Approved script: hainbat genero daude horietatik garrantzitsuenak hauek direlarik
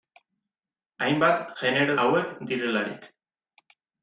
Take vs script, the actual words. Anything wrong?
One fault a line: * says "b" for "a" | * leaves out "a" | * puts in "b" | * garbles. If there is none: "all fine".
* leaves out "daude horietatik garrantzitsuenak"